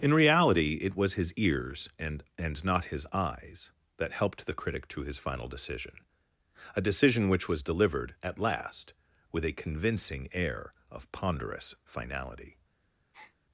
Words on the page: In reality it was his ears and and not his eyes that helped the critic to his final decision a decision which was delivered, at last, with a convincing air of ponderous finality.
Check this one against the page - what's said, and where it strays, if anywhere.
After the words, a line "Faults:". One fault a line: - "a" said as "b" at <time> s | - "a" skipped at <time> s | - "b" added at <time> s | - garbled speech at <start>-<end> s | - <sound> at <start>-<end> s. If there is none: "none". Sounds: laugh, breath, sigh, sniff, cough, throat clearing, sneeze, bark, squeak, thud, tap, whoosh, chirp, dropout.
In reality it was his ears and and not his eyes that helped the critic to his final decision a decision which was delivered, at last, with a convincing air of ponderous finality.
Faults:
- breath at 13.1-13.4 s